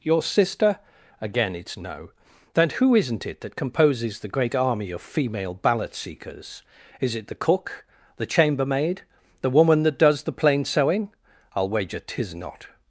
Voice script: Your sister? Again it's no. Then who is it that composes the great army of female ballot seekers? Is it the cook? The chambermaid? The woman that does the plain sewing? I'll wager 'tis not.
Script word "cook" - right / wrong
right